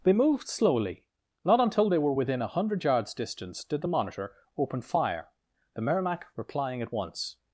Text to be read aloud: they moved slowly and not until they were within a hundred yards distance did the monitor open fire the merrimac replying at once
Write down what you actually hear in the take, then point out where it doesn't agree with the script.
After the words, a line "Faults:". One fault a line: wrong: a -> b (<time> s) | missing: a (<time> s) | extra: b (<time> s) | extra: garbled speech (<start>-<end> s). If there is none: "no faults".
they moved slowly not until they were within a hundred yards distance did the monitor open fire the merrimac replying at once
Faults:
missing: and (1.1 s)